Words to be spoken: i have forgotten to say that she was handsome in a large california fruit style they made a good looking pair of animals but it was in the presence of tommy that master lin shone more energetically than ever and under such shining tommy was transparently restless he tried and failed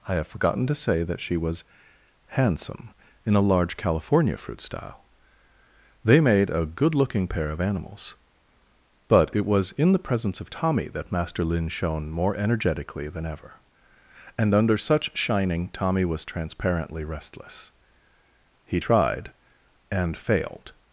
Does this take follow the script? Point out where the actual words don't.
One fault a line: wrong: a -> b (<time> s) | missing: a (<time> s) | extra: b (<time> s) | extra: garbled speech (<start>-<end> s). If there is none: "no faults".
no faults